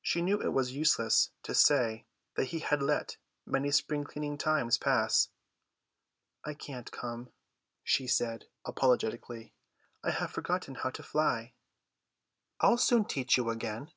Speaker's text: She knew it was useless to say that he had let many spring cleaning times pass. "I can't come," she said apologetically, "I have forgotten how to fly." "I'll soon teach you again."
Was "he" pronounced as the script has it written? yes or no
yes